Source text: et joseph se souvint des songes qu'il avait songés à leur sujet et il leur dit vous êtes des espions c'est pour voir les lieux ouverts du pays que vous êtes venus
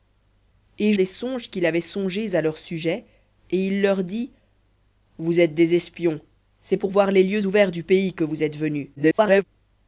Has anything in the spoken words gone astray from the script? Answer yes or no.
yes